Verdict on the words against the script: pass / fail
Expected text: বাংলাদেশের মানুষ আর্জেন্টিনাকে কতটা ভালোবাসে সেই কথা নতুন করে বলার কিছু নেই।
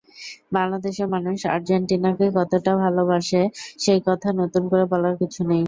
pass